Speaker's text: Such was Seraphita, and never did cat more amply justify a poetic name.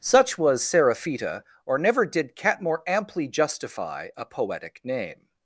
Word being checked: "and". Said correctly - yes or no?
no